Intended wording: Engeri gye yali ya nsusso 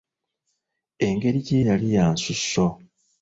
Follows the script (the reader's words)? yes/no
yes